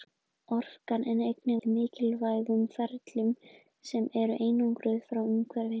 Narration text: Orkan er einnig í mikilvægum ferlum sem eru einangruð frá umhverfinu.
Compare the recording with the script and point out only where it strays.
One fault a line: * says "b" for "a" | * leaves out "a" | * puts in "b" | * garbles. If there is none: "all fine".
all fine